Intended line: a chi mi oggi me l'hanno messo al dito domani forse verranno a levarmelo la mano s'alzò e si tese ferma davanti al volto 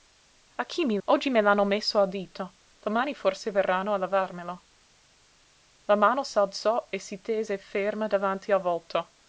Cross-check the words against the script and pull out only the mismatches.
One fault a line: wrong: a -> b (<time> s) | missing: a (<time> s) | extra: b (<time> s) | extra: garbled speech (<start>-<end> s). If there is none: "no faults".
no faults